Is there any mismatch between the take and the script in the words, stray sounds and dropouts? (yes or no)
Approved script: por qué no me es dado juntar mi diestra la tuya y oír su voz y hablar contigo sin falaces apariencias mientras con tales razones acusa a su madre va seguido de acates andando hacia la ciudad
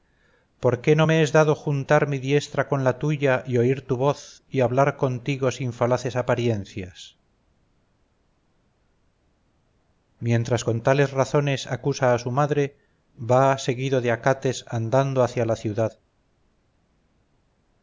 yes